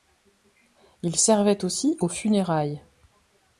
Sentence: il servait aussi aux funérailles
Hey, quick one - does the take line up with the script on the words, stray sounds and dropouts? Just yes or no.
yes